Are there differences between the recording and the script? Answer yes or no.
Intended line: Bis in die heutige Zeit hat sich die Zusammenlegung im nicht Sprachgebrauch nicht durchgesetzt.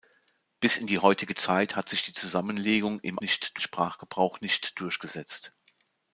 no